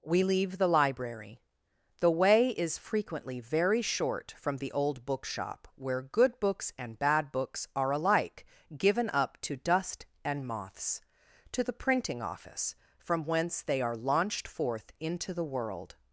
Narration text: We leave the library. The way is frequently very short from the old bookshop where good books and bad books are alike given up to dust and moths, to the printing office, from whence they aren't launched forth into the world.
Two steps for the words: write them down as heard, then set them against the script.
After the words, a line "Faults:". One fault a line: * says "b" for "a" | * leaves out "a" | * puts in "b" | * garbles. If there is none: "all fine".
We leave the library. The way is frequently very short from the old bookshop where good books and bad books are alike given up to dust and moths, to the printing office, from whence they are launched forth into the world.
Faults:
* says "are" for "aren't"